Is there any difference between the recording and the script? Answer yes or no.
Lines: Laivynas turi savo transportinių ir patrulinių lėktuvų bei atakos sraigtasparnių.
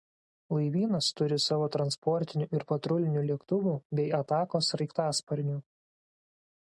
no